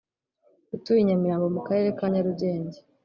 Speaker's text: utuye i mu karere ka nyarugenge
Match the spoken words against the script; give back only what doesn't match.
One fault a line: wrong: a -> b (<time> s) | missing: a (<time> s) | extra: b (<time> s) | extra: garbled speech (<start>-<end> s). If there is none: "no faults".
extra: nyamirambo (1.1 s)